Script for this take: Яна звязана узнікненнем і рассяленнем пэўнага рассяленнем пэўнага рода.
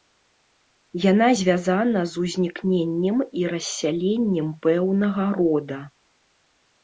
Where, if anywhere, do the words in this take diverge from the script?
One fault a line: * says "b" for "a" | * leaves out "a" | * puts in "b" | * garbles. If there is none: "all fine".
* puts in "з"
* leaves out "рассяленнем пэўнага"